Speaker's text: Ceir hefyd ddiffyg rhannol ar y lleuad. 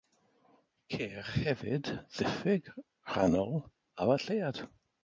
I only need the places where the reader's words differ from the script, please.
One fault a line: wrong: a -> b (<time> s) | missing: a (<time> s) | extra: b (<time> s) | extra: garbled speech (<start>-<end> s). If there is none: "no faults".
no faults